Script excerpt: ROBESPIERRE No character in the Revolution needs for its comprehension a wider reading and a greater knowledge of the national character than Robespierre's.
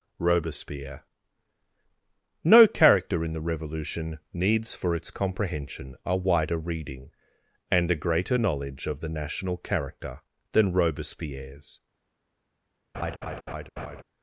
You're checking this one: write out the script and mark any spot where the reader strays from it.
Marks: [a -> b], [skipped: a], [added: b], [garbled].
ROBESPIERRE No character in the Revolution needs for its comprehension a wider reading and a greater knowledge of the national character than Robespierre's.